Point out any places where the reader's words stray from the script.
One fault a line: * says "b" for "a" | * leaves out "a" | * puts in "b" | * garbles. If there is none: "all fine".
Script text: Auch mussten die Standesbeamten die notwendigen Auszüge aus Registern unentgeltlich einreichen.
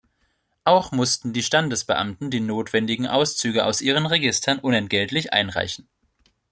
* puts in "ihren"